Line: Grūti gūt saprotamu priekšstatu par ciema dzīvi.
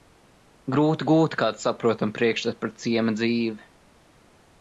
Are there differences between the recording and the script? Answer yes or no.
yes